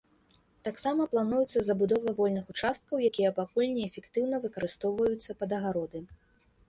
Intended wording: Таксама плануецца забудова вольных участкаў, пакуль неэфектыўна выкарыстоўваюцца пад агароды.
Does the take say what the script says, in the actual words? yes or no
no